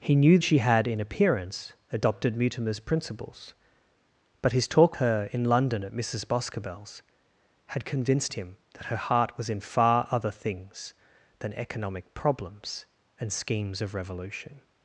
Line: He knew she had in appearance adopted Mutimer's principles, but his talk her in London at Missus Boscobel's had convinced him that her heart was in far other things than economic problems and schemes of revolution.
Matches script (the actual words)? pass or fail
pass